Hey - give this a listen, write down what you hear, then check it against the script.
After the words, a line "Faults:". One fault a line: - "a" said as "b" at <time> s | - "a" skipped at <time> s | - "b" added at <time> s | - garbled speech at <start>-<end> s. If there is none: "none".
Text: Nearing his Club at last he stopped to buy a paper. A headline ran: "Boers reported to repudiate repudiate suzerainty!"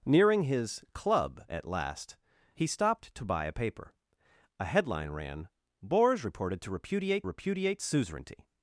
Nearing his Club at last he stopped to buy a paper. A headline ran: "Boers reported to repudiate repudiate suzerainty!"
Faults:
none